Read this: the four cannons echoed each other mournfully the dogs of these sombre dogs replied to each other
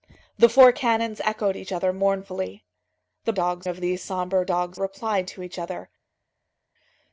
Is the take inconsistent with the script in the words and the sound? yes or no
no